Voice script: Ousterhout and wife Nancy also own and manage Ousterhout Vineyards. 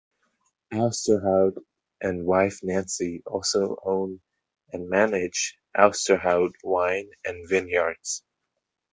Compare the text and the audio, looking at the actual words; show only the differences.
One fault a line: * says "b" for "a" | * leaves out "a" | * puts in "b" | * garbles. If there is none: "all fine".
* puts in "Wine and"